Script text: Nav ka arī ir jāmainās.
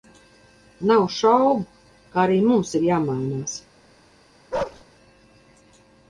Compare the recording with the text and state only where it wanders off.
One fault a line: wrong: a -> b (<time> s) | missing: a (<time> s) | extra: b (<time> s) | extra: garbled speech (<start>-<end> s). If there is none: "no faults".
extra: šaubu (1.2 s)
extra: mums (2.5 s)